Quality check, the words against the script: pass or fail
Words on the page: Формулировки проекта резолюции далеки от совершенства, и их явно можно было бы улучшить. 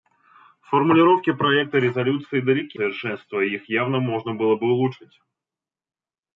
fail